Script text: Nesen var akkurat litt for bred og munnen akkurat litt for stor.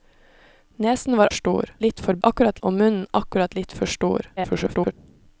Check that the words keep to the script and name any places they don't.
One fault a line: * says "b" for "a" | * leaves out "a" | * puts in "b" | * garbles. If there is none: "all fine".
* says "stor" for "akkurat"
* says "akkurat" for "bred"
* garbles